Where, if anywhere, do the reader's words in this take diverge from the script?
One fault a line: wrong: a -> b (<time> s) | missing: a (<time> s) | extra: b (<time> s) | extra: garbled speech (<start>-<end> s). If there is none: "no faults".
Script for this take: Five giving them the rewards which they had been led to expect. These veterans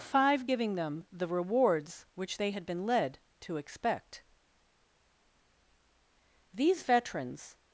no faults